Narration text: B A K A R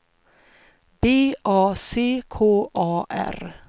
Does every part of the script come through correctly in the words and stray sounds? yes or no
no